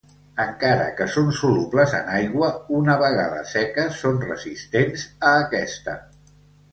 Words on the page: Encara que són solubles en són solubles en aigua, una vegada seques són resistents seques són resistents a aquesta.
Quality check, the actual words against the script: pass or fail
fail